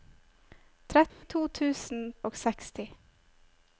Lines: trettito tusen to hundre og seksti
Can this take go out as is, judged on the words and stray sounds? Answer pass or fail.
fail